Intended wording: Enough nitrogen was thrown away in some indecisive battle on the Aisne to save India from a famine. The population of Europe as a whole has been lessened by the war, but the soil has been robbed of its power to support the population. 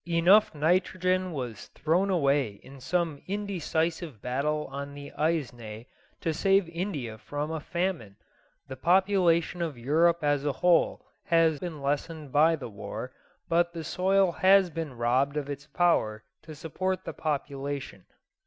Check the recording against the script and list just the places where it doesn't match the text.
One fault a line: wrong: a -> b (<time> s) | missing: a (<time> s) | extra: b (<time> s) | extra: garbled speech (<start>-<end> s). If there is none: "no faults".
no faults